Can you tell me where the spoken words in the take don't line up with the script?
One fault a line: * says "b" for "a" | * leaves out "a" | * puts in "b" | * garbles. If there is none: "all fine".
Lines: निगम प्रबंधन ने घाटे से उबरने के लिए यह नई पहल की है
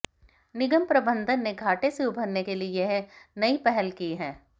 all fine